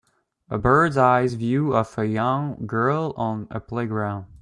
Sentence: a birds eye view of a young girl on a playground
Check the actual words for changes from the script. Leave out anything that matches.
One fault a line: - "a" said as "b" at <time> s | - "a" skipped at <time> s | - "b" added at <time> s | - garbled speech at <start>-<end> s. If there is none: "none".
none